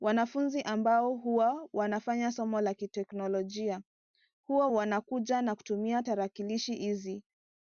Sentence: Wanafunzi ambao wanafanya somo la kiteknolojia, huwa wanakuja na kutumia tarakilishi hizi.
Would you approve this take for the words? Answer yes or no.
no